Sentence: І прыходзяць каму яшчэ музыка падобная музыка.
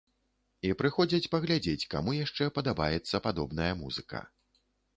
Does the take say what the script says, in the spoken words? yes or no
no